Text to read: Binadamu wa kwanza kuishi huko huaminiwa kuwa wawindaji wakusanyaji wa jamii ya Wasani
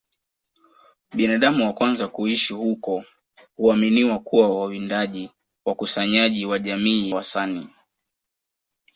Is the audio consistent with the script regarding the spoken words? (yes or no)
no